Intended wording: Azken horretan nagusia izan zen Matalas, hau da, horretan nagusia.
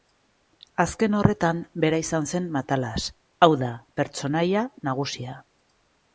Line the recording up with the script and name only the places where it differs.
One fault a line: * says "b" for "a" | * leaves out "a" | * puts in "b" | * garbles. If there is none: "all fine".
* says "bera" for "nagusia"
* says "pertsonaia" for "horretan"